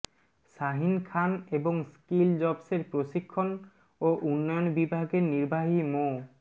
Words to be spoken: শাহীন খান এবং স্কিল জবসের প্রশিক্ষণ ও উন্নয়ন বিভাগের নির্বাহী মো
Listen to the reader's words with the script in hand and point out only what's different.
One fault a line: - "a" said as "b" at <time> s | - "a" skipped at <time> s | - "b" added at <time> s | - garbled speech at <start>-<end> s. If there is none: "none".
none